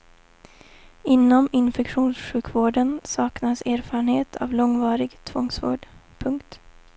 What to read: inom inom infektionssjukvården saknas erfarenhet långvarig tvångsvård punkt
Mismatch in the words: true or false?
true